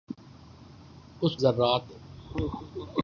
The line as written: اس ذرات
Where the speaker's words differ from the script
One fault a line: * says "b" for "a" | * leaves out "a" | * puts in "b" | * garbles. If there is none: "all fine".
all fine